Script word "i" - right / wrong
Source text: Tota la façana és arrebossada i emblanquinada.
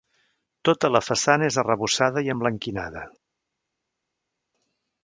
right